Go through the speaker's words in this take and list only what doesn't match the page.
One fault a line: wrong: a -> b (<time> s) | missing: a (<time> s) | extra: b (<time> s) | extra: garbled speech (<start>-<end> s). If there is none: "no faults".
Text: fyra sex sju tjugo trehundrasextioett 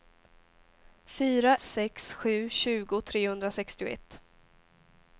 no faults